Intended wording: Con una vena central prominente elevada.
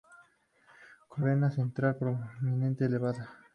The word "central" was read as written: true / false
true